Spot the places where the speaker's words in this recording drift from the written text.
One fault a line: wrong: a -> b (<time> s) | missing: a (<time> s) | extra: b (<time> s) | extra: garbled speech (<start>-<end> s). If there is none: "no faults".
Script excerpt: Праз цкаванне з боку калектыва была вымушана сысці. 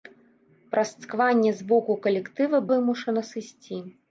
missing: была (2.6 s)